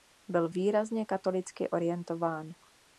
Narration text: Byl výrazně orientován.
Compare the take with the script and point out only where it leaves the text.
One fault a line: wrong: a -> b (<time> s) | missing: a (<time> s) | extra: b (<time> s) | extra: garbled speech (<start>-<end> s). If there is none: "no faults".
extra: katolicky (1.0 s)